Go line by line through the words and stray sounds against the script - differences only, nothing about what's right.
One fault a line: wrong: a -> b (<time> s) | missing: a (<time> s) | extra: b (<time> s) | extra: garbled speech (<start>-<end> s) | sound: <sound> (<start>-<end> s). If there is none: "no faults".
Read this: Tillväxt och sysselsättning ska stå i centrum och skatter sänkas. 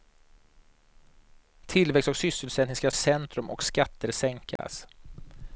missing: stå (2.9 s)
sound: dropout (4.6-4.6 s)